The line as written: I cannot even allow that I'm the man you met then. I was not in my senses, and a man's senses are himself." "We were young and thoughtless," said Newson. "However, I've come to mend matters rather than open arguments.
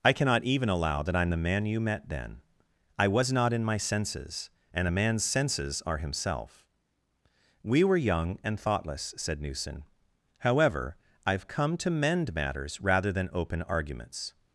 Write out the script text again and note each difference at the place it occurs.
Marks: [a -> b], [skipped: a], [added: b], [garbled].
I cannot even allow that I'm the man you met then. I was not in my senses, and a man's senses are himself." "We were young and thoughtless," said Newson. "However, I've come to mend matters rather than open arguments.